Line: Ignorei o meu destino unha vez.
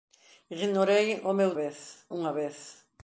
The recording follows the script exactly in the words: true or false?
false